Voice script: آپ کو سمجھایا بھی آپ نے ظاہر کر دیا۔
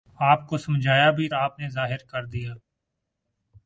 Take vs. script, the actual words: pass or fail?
pass